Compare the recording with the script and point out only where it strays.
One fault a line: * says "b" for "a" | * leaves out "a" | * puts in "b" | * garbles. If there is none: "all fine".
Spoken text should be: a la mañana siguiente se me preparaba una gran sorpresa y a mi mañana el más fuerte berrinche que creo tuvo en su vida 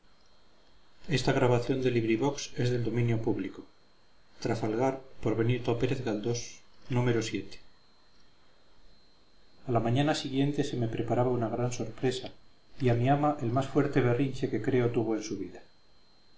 * says "ama" for "mañana"